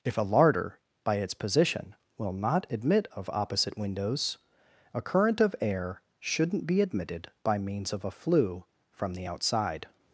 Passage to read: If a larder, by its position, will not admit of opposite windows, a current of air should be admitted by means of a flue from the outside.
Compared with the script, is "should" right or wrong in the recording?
wrong